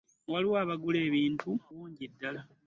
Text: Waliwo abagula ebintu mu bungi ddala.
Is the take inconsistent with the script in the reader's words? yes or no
yes